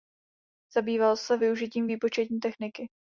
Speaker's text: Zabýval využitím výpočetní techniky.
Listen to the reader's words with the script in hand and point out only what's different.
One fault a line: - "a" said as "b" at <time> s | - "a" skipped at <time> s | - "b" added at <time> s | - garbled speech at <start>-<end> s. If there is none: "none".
- "se" added at 1.2 s